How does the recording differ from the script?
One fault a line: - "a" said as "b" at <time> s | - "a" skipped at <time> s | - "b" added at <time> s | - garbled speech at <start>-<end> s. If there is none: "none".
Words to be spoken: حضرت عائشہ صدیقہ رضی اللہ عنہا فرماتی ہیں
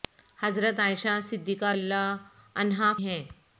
- "رضی" skipped at 1.7 s
- "فرماتی" skipped at 2.9 s